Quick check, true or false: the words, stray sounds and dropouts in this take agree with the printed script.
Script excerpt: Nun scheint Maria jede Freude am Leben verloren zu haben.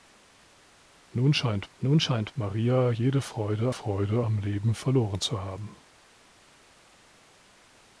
false